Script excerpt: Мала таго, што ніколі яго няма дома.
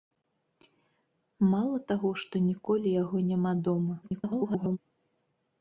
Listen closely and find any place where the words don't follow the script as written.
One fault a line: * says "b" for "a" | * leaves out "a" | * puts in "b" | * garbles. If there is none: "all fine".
* garbles